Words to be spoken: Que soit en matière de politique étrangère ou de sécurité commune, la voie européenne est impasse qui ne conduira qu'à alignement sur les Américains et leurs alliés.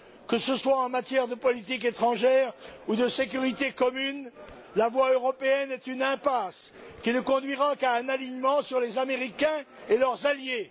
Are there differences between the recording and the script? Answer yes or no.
yes